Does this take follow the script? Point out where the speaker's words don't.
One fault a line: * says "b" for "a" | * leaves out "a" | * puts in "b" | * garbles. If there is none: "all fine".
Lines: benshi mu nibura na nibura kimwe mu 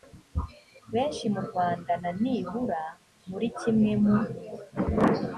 * says "rwanda" for "nibura"
* puts in "muri"